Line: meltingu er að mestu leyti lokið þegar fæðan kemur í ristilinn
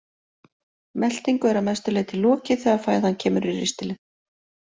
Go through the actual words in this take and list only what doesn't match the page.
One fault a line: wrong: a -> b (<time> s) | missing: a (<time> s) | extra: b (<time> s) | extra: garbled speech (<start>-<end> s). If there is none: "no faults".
no faults